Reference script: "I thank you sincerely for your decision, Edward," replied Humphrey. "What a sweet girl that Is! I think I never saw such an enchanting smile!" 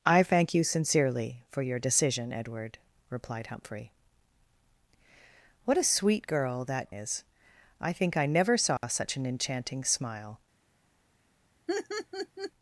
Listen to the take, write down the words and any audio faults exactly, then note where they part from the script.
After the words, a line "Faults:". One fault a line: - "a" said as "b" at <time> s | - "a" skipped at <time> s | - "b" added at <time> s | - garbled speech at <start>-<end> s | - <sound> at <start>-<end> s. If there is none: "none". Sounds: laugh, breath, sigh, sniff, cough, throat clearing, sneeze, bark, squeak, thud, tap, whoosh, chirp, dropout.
"I thank you sincerely for your decision, Edward," replied Humphrey. "What a sweet girl that Is! I think I never saw such an enchanting smile!"
Faults:
- dropout at 8.8-8.8 s
- laugh at 11.7-12.5 s